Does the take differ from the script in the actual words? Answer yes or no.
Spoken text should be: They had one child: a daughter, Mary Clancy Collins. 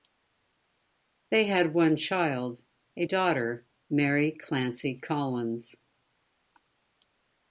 no